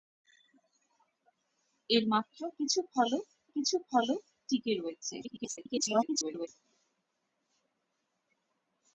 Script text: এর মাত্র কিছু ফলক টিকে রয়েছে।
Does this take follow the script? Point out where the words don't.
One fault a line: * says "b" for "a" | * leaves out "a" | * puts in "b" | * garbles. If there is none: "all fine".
* puts in "কিছু ফলক"
* garbles